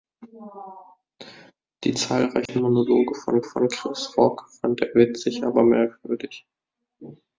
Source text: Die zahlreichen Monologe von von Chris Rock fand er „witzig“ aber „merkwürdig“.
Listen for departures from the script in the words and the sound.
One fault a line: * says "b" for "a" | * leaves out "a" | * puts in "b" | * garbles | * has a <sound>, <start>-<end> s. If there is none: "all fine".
* has a dropout, 2.5-2.5 s